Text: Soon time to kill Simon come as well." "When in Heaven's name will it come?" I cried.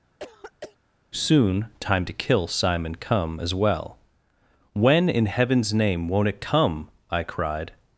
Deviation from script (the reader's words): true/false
true